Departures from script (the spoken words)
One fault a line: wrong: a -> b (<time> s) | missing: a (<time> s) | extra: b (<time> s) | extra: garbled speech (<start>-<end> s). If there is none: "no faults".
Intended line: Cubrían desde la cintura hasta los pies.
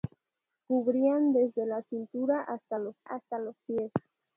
extra: hasta los (3.0 s)